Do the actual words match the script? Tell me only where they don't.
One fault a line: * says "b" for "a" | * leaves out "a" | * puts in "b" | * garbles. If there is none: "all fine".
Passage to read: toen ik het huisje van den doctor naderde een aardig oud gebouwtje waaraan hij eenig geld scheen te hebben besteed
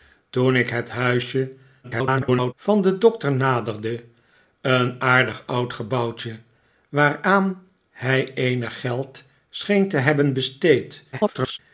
* garbles
* garbles